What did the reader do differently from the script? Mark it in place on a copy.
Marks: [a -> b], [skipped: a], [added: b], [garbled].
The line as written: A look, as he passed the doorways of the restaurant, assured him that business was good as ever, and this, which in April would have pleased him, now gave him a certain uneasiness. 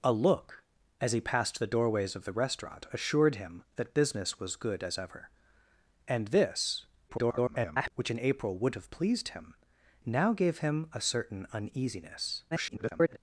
A look, as he passed the doorways of the restaurant, assured him that business was good as ever, and this, [garbled] which in April would have pleased him, now gave him a certain uneasiness. [garbled]